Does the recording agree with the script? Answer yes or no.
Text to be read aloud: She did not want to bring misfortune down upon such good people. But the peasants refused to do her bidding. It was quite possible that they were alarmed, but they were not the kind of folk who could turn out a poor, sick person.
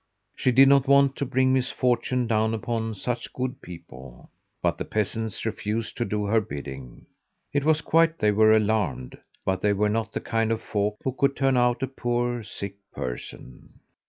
no